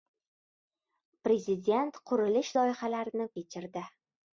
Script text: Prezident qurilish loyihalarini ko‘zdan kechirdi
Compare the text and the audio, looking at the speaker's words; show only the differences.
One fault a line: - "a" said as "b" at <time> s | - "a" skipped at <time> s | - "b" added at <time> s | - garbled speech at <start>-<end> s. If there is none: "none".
- "ko‘zdan" skipped at 3.3 s